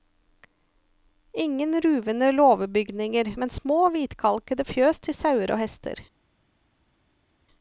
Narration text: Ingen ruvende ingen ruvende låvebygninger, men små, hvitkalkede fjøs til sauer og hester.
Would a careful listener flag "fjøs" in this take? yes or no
no